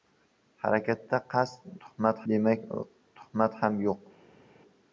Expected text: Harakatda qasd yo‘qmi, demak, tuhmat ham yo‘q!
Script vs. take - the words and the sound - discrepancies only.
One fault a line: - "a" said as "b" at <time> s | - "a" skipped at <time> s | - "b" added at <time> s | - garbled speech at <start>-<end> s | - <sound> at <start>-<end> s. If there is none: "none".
- "yo‘qmi" said as "tuhmat" at 1.9 s